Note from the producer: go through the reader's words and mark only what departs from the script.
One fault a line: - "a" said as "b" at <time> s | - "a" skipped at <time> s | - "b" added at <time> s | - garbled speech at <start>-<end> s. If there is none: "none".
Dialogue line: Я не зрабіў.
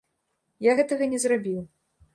- "гэтага" added at 0.8 s